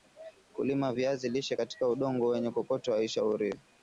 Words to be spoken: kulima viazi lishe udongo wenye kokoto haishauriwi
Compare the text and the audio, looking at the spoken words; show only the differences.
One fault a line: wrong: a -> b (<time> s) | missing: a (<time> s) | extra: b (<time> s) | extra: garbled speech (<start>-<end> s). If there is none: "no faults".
extra: katika (1.5 s)